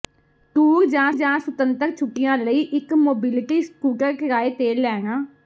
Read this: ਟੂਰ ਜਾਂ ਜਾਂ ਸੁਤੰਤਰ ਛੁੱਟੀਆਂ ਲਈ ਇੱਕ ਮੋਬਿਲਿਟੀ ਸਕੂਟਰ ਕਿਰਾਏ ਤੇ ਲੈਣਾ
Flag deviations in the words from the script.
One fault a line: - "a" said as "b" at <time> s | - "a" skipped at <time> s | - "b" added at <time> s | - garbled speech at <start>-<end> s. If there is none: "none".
none